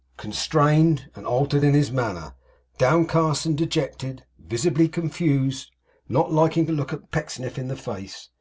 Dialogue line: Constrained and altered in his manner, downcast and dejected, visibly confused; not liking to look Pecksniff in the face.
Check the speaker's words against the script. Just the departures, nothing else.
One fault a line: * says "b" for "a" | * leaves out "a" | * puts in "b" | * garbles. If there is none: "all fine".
all fine